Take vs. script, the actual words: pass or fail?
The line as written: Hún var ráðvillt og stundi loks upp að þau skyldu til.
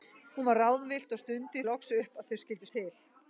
pass